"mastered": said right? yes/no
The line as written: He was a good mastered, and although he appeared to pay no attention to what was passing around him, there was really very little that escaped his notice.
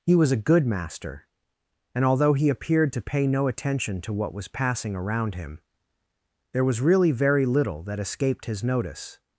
no